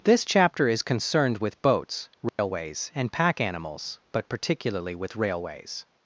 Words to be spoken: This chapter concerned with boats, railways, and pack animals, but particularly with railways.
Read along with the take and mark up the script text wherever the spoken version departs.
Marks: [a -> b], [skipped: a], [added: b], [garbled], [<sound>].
This chapter [added: is] concerned with boats, railways, [dropout] and pack animals, but particularly with railways.